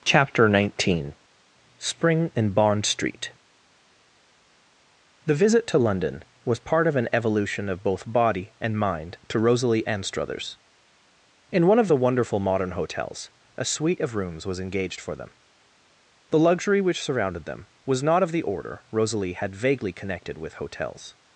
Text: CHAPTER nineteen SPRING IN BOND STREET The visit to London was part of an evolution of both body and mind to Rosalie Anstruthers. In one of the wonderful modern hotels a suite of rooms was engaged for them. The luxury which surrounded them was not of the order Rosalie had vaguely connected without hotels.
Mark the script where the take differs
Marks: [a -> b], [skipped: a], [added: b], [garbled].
CHAPTER nineteen SPRING IN BOND STREET The visit to London was part of an evolution of both body and mind to Rosalie Anstruthers. In one of the wonderful modern hotels a suite of rooms was engaged for them. The luxury which surrounded them was not of the order Rosalie had vaguely connected [without -> with] hotels.